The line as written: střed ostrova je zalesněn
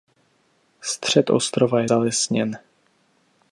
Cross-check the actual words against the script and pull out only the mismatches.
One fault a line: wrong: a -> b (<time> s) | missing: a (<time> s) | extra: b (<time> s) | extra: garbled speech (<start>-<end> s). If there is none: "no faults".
no faults